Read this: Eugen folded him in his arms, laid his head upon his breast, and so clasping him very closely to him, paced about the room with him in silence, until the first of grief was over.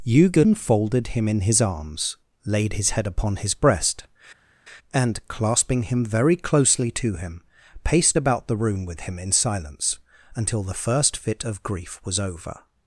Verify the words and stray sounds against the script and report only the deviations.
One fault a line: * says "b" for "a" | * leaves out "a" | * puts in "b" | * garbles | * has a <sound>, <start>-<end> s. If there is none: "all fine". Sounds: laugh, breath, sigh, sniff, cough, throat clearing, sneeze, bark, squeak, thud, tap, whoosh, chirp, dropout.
* leaves out "so"
* puts in "fit"